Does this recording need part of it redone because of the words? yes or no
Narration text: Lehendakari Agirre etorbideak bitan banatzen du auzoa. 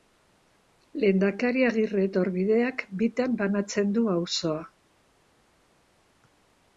no